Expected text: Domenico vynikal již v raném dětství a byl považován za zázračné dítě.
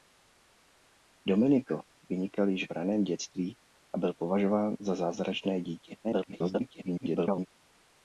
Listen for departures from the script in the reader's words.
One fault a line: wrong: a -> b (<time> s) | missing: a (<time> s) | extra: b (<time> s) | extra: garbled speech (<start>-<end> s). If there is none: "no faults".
extra: garbled speech (6.0-7.5 s)